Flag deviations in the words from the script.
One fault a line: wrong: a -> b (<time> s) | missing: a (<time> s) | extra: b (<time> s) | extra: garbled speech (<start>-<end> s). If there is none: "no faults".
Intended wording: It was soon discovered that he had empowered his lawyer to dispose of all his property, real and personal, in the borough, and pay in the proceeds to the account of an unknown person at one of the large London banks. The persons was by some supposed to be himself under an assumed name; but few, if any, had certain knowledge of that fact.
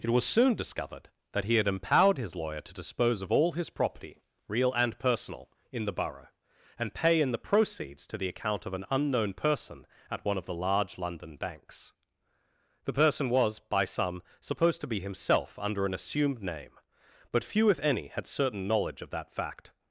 wrong: persons -> person (12.9 s)